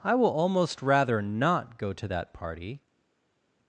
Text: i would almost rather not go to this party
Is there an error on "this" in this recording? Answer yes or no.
yes